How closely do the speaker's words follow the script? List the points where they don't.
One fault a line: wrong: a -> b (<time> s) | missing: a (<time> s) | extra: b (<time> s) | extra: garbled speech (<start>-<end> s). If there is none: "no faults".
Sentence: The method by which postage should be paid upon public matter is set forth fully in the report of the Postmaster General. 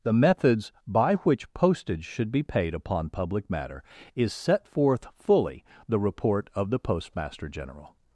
wrong: method -> methods (0.1 s)
missing: in (5.6 s)